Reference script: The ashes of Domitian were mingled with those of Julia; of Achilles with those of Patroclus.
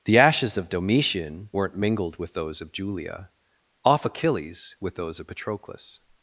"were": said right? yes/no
no